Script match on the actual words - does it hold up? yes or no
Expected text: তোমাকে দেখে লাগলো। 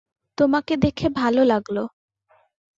no